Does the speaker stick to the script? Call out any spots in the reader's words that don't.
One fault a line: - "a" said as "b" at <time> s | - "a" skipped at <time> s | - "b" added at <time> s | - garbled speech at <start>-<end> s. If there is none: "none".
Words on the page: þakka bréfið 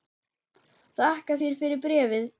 - "þér fyrir" added at 1.4 s